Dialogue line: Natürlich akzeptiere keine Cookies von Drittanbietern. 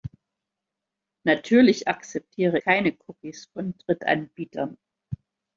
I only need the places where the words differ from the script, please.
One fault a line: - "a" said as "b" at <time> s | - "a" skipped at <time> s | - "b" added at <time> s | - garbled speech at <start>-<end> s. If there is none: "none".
none